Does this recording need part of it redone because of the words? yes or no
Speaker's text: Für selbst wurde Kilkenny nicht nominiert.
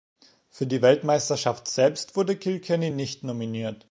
yes